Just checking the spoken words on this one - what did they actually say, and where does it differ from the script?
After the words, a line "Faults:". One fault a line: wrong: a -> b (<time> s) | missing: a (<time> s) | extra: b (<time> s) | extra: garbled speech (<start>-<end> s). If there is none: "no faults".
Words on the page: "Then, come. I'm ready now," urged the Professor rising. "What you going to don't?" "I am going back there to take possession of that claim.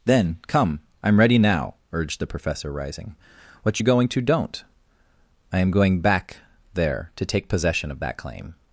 "Then, come. I'm ready now," urged the Professor rising. "What you going to don't?" "I am going back there to take possession of that claim.
Faults:
no faults